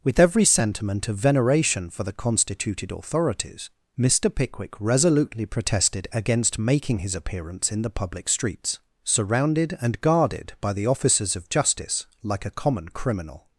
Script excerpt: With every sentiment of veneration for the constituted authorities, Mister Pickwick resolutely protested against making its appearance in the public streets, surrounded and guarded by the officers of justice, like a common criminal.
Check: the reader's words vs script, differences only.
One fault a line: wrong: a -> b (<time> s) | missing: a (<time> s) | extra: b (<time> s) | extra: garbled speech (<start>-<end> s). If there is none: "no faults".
wrong: its -> his (7.0 s)